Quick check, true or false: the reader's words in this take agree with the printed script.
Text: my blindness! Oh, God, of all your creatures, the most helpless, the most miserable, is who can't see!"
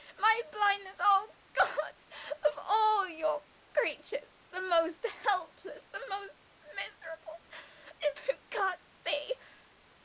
true